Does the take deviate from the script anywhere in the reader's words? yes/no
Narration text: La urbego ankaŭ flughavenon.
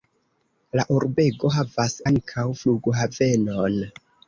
yes